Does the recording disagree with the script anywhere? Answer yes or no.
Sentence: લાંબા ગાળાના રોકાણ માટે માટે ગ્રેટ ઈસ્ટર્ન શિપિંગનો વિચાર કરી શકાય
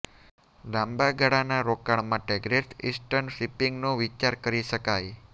yes